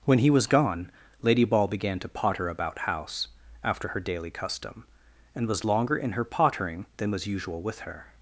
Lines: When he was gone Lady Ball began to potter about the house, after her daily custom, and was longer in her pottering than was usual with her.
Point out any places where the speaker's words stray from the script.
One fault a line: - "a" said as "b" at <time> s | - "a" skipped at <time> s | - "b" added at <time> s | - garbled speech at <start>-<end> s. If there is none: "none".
- "the" skipped at 2.8 s